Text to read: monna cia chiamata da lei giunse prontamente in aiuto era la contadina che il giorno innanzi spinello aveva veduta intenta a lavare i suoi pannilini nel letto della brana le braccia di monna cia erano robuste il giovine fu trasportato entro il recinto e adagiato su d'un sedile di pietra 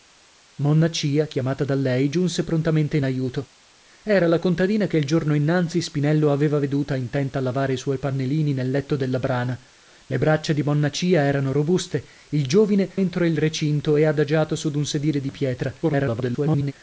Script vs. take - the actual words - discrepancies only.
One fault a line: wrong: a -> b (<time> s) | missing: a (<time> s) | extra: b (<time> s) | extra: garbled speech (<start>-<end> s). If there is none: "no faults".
missing: fu trasportato (12.9 s)
extra: garbled speech (15.8-16.7 s)